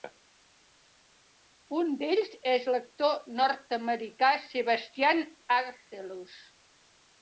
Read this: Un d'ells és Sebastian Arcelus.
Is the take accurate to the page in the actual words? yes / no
no